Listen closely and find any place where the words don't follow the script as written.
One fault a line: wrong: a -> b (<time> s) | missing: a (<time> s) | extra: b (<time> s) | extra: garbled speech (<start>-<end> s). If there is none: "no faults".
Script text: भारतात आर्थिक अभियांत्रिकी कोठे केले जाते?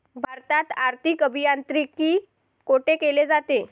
no faults